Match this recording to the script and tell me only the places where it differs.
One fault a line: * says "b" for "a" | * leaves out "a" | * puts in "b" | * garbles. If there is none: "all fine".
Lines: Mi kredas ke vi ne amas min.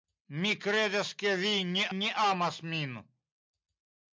* puts in "ne"